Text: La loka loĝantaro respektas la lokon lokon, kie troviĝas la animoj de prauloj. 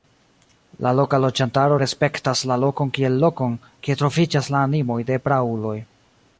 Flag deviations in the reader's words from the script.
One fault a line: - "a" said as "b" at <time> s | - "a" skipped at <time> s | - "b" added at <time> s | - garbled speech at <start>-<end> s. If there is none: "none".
- "kiel" added at 3.0 s